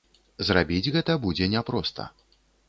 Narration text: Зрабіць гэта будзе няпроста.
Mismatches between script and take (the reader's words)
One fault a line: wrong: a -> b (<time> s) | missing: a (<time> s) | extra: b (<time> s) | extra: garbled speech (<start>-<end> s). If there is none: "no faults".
no faults